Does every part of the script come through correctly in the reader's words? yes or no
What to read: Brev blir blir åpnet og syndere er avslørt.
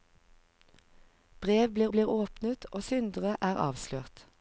yes